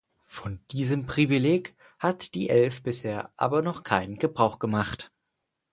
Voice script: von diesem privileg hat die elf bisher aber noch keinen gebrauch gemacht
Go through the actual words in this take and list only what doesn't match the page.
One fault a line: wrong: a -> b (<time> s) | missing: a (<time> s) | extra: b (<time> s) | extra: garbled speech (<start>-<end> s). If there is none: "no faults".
no faults